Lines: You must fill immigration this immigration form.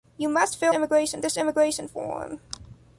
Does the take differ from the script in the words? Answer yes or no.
no